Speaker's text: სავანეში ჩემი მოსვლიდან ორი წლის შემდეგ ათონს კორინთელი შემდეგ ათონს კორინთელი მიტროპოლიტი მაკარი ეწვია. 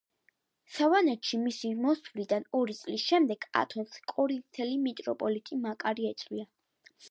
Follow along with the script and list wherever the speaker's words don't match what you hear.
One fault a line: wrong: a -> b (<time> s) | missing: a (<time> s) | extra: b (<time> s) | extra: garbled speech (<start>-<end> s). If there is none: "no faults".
wrong: ჩემი -> მისი (1.4 s)
missing: შემდეგ ათონს კორინთელი (4.8 s)